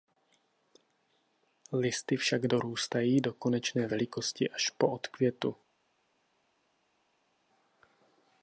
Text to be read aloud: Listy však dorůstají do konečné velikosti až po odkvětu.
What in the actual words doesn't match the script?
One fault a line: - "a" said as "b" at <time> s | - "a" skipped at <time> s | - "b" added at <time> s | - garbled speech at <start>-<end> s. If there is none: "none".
none